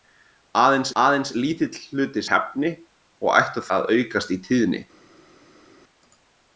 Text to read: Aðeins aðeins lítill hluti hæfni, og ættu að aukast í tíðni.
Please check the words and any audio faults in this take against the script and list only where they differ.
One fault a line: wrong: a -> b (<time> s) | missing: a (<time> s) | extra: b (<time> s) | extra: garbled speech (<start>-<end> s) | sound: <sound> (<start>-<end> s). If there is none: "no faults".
no faults